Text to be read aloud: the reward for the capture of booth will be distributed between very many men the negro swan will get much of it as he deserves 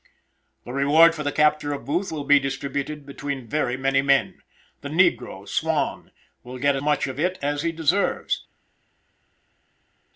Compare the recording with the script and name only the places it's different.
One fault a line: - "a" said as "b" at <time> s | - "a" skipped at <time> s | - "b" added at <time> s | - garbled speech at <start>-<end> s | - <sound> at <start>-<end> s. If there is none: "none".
none